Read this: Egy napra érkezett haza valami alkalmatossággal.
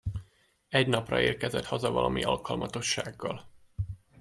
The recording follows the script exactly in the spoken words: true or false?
true